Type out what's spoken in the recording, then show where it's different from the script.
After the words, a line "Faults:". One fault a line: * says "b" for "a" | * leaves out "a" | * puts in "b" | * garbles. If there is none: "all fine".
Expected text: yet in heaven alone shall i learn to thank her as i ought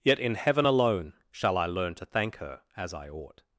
yet in heaven alone shall i learn to thank her as i ought
Faults:
all fine